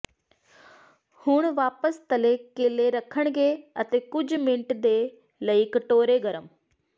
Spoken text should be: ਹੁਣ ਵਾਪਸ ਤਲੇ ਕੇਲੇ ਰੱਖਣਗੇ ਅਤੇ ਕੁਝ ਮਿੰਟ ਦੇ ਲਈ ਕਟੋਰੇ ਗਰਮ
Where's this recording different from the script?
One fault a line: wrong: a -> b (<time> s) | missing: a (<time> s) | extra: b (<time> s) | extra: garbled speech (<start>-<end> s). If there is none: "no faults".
no faults